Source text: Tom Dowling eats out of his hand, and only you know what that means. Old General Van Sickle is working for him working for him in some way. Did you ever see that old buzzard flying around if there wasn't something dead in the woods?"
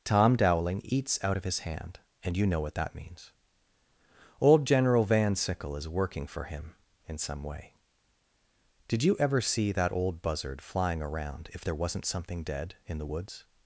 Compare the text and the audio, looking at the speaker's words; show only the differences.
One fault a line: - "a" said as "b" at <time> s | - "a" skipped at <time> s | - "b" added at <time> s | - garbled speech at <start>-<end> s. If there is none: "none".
- "only" skipped at 2.4 s
- "working for him" skipped at 6.7 s